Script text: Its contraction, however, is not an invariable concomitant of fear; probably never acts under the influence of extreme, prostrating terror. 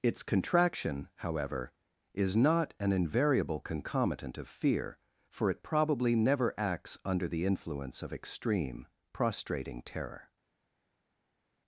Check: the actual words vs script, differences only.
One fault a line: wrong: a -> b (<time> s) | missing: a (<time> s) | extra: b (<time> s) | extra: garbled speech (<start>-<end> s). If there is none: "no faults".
extra: for it (5.3 s)